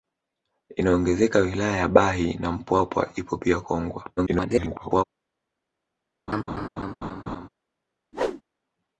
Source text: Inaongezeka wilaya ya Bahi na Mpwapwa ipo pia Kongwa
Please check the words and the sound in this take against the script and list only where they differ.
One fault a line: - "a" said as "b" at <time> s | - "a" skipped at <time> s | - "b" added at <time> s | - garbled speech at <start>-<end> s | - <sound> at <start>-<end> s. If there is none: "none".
- garbled speech at 4.2-5.0 s
- laugh at 6.3-7.5 s
- whoosh at 8.1-8.4 s